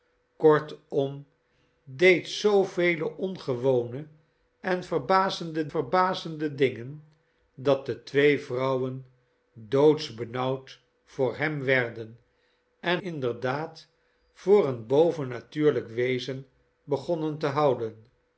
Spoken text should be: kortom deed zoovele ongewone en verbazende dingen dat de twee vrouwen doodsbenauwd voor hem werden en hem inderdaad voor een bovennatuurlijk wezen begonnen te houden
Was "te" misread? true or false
false